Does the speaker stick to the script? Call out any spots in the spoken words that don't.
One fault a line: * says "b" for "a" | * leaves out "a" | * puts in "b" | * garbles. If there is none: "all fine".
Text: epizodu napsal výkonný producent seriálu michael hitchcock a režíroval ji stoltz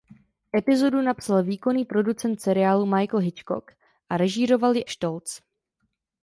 all fine